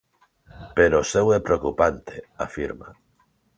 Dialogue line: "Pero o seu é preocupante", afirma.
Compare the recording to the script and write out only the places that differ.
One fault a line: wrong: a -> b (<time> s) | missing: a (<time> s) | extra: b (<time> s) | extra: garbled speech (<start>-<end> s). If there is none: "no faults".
no faults